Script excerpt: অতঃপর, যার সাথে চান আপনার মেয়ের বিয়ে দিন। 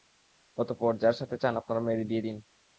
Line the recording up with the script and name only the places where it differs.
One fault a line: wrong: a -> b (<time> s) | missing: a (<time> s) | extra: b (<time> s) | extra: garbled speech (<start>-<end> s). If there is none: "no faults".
no faults